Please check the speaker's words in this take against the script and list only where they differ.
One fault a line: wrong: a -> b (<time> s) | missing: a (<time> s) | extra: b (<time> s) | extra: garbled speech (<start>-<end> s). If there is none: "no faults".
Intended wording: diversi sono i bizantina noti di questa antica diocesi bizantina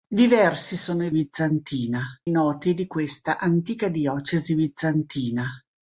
no faults